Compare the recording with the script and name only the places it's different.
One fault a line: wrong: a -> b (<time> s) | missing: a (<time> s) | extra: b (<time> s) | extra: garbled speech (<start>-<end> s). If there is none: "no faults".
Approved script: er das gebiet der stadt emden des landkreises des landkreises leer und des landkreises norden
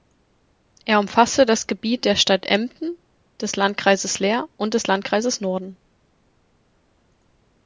extra: umfasste (1.0 s)
missing: des landkreises (4.2 s)